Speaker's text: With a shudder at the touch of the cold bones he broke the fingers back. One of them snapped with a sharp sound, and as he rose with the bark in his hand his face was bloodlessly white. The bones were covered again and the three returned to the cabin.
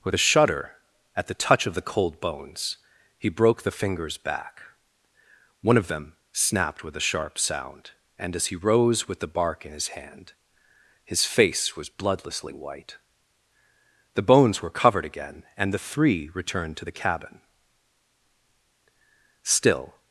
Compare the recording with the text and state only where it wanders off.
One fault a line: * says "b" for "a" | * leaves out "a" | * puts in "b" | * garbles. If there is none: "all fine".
* puts in "Still"